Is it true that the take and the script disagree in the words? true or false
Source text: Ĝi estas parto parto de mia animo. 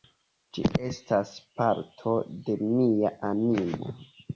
true